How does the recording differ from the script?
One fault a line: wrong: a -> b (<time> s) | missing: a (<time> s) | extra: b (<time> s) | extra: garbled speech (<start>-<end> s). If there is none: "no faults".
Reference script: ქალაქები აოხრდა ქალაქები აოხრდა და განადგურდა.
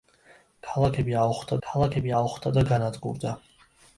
no faults